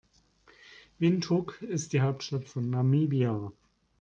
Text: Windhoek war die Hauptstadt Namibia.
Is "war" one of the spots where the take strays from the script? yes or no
yes